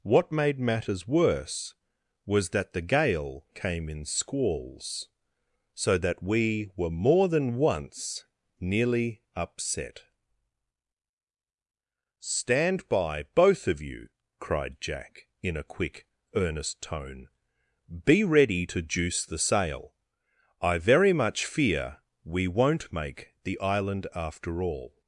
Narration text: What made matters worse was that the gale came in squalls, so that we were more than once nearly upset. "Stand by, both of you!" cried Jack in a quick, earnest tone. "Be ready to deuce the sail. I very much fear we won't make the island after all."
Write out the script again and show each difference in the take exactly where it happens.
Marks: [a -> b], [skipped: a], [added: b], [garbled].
What made matters worse was that the gale came in squalls, so that we were more than once nearly upset. "Stand by, both of you!" cried Jack in a quick, earnest tone. "Be ready to [deuce -> juice] the sail. I very much fear we won't make the island after all."